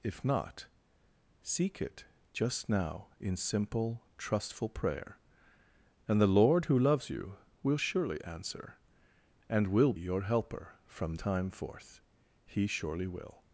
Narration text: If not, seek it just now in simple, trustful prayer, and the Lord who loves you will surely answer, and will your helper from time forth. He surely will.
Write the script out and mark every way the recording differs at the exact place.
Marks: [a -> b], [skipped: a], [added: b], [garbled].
If not, seek it just now in simple, trustful prayer, and the Lord who loves you will surely answer, and will your helper from time forth. He surely will.